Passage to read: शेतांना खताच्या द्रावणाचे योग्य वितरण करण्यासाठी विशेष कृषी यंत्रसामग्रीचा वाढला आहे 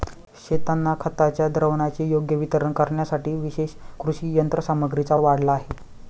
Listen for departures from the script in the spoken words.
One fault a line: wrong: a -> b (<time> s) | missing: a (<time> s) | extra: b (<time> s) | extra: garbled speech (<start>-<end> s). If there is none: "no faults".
no faults